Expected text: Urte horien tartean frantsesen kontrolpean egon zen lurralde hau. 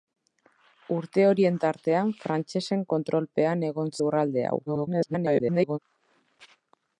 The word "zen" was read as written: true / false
false